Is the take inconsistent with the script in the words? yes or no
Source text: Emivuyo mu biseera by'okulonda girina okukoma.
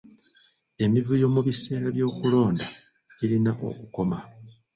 no